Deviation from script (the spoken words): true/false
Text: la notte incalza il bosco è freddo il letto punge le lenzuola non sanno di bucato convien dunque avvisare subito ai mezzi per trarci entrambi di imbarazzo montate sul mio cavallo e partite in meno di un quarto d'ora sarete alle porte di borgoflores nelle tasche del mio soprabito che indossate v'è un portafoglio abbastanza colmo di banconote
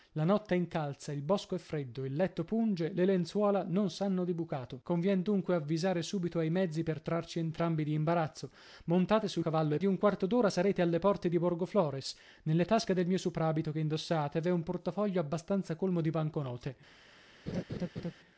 true